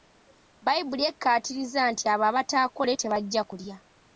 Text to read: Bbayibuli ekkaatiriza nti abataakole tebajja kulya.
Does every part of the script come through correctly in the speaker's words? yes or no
no